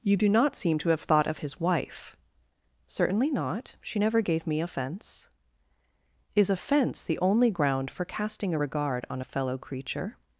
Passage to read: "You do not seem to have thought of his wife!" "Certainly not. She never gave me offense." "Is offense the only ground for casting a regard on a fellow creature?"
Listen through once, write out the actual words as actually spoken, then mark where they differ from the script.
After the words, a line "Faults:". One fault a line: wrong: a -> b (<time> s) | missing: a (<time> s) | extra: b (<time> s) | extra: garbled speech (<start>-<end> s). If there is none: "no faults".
"You do not seem to have thought of his wife!" "Certainly not. She never gave me offense." "Is offense the only ground for casting a regard on a fellow creature?"
Faults:
no faults